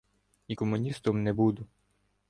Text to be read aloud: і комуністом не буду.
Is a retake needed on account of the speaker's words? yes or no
no